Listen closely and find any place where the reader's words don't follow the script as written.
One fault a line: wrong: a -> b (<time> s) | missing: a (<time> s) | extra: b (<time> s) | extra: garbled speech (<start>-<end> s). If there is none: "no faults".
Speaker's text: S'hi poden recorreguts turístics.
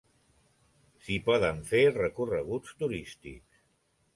extra: fer (1.7 s)